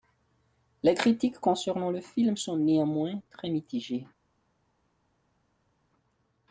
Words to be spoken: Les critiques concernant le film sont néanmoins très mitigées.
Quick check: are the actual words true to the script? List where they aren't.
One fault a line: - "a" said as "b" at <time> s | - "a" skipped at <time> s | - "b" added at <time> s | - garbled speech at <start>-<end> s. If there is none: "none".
none